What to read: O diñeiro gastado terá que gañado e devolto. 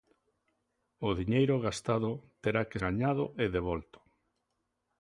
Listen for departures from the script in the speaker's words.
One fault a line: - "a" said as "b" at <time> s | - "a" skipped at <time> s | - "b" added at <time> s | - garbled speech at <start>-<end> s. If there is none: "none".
none